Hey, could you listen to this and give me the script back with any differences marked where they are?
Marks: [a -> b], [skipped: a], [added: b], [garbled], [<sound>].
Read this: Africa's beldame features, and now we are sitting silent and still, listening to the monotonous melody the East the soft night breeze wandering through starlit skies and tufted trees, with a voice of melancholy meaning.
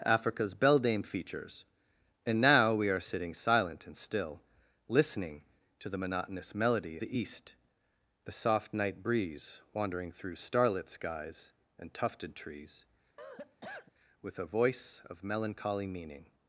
Africa's beldame features, and now we are sitting silent and still, listening to the monotonous melody the East the soft night breeze wandering through starlit skies and tufted trees, [cough] with a voice of melancholy meaning.